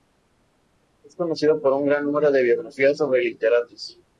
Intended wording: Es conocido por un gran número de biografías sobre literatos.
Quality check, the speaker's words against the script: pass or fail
pass